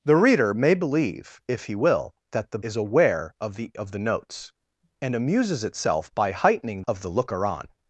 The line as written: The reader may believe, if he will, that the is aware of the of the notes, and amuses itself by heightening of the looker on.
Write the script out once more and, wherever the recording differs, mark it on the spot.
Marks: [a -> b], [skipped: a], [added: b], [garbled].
The reader may believe, if he will, that the is aware of the of the notes, and amuses itself by heightening of the looker on.